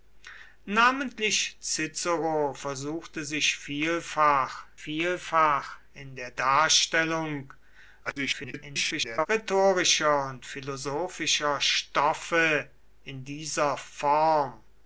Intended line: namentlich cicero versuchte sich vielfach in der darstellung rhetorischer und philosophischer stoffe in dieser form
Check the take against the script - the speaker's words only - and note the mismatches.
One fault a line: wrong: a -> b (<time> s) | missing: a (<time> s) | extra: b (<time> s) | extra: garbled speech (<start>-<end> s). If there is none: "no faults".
extra: vielfach (4.7 s)
extra: garbled speech (8.0-9.3 s)